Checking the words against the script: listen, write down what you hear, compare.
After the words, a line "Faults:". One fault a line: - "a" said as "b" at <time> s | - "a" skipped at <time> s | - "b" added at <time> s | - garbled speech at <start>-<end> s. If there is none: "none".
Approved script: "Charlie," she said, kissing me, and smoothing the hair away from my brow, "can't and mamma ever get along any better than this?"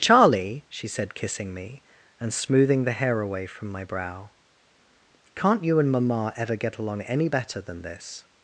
"Charlie," she said, kissing me, and smoothing the hair away from my brow, "can't you and mamma ever get along any better than this?"
Faults:
- "you" added at 5.6 s